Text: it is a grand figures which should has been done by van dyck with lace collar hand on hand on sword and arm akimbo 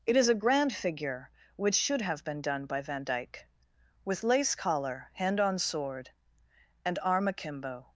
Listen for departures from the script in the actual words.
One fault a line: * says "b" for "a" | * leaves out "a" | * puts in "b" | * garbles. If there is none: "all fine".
* says "figure" for "figures"
* says "have" for "has"
* leaves out "hand on"